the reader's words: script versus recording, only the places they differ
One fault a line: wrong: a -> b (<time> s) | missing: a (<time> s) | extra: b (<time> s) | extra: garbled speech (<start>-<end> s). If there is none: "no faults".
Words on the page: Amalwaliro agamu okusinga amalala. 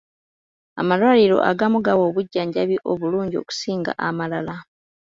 extra: gawa obujjanjabi obulungi (1.9 s)